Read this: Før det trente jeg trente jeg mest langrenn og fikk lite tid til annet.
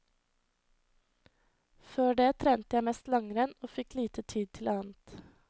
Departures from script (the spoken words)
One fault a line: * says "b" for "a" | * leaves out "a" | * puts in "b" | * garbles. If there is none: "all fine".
* leaves out "trente jeg"